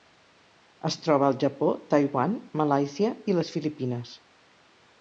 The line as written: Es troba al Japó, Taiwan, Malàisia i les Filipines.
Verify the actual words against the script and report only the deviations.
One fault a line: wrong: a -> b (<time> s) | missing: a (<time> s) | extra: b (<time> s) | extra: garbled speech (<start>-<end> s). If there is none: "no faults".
no faults